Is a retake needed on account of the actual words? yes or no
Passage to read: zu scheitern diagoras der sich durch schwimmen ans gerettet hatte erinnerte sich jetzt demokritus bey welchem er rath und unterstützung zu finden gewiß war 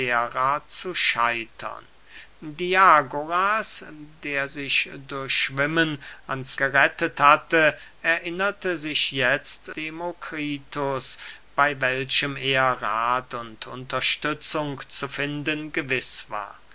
no